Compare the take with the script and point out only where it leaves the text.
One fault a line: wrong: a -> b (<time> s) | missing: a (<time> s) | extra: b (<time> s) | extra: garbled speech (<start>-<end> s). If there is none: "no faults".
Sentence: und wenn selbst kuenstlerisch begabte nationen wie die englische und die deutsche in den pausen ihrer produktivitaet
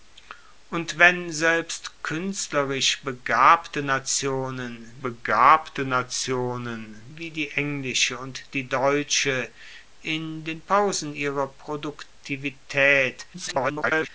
extra: begabte nationen (5.0 s)
extra: garbled speech (13.3-14.1 s)